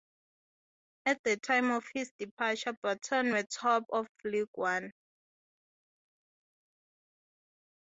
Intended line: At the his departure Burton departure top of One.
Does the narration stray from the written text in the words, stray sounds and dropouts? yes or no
yes